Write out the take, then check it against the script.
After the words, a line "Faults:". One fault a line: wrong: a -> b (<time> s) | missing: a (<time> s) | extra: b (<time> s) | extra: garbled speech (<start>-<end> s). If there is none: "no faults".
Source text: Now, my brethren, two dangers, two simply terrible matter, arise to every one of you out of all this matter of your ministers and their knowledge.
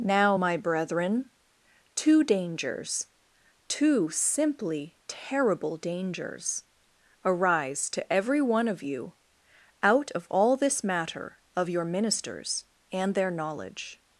Now, my brethren, two dangers, two simply terrible dangers, arise to every one of you out of all this matter of your ministers and their knowledge.
Faults:
wrong: matter -> dangers (5.8 s)